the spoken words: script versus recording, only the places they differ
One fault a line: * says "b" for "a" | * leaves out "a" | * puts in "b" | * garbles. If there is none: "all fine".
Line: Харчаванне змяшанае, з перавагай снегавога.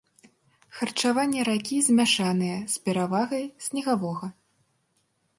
* puts in "ракі"